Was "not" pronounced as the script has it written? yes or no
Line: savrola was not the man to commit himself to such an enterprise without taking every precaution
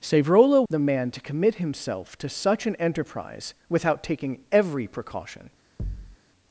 no